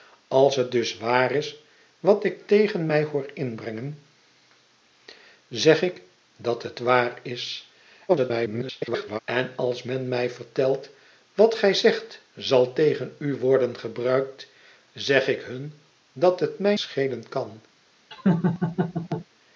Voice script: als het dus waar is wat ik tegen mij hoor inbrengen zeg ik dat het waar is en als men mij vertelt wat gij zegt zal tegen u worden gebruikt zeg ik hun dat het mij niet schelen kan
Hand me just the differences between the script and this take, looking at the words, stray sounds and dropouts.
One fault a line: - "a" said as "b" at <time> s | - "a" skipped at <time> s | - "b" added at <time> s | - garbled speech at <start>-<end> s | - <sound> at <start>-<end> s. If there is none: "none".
- garbled speech at 8.1-9.2 s
- "niet" skipped at 16.8 s
- laugh at 18.1-19.3 s